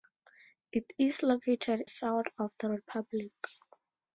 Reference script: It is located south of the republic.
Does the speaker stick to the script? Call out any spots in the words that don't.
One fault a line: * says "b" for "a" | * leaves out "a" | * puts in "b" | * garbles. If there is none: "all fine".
all fine